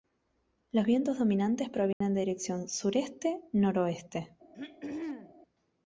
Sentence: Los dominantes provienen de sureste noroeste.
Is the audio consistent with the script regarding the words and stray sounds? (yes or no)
no